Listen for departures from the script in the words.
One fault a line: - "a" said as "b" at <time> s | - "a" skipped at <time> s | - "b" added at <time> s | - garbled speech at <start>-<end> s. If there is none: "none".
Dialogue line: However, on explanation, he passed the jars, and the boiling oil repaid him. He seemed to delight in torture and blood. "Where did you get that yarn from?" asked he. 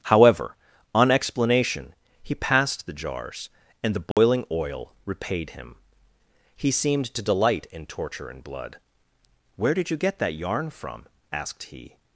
none